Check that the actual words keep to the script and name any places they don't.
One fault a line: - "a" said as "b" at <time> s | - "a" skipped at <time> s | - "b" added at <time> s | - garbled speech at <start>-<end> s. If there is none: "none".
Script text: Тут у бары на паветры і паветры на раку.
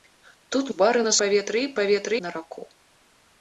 none